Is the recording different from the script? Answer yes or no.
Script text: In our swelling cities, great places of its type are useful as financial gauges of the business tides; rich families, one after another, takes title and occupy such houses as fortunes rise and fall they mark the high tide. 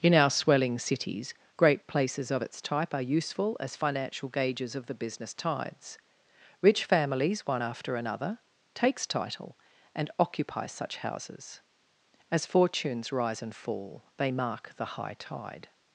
no